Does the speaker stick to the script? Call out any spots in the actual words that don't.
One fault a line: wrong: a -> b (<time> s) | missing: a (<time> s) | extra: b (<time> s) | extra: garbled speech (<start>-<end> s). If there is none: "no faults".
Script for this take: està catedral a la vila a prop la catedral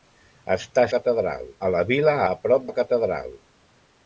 no faults